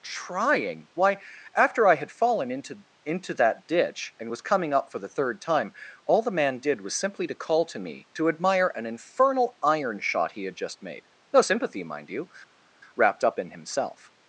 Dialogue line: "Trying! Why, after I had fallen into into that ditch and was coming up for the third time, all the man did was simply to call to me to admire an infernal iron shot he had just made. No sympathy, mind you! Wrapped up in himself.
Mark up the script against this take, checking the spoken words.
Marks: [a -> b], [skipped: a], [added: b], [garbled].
"Trying! Why, after I had fallen into into that ditch and was coming up for the third time, all the man did was simply to call to me to admire an infernal iron shot he had just made. No sympathy, mind you! Wrapped up in himself.